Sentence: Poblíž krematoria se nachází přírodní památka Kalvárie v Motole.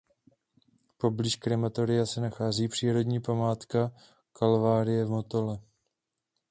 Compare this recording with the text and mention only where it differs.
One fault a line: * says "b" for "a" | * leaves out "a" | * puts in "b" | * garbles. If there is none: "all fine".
all fine